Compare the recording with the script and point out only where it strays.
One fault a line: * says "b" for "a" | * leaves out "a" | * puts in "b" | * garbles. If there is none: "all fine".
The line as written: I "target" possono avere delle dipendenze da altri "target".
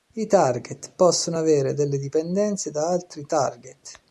all fine